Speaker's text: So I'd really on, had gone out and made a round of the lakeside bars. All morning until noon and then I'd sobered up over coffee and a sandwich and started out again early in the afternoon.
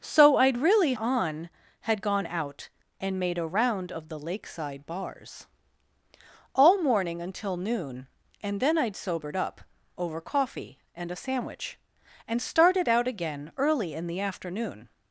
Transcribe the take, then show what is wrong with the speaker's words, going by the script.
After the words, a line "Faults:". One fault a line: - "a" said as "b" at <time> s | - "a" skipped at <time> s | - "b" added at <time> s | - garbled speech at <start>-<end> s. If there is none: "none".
So I'd really on, had gone out and made a round of the lakeside bars. All morning until noon and then I'd sobered up over coffee and a sandwich and started out again early in the afternoon.
Faults:
none